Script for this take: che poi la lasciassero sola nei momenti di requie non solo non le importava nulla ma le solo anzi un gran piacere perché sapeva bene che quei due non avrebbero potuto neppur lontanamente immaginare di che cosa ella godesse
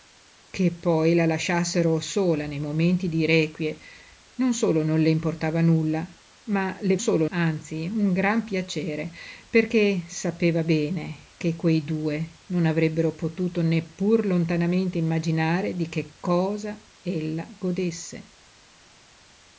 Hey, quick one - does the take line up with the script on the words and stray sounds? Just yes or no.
yes